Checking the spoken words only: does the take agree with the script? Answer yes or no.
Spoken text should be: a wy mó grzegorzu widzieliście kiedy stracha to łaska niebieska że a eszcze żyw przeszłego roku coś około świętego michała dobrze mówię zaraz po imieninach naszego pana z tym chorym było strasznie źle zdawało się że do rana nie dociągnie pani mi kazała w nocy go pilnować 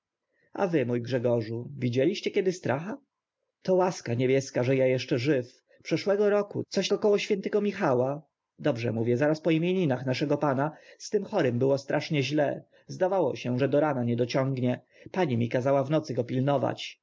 yes